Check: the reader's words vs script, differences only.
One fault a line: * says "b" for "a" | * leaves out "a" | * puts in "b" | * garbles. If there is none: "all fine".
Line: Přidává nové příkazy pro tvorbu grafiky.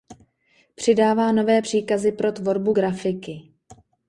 all fine